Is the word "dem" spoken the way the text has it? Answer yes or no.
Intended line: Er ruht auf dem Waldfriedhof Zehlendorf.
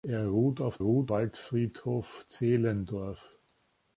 no